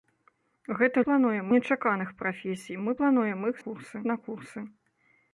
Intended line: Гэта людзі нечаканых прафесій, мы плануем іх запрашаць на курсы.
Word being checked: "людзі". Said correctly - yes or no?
no